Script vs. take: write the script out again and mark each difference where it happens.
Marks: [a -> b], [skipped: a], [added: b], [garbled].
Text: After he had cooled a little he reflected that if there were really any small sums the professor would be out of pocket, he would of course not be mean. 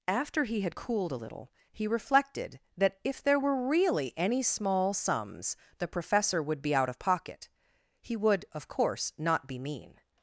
After he had cooled a little he reflected that if there were really any small sums the professor would be out of pocket, he would of course not be mean.